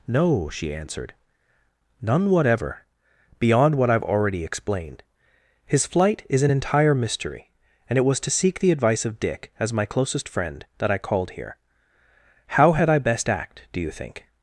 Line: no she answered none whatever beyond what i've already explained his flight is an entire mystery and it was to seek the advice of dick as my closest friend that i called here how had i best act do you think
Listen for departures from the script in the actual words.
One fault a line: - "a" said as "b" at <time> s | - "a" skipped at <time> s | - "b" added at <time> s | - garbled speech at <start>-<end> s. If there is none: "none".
none